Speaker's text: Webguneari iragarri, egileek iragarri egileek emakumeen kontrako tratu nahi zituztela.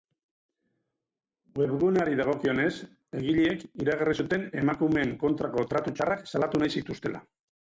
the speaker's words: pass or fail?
fail